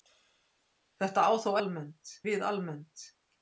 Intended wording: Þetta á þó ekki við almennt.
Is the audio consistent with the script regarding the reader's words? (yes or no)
no